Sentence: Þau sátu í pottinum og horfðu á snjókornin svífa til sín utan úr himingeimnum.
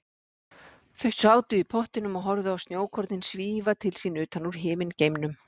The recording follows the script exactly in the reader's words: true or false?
true